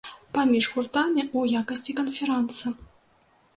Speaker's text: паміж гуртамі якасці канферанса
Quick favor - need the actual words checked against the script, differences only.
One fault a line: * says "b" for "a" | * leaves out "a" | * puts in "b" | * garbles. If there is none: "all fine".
* puts in "ў"